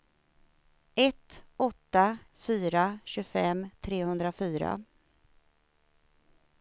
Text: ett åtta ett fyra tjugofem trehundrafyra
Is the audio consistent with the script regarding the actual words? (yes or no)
no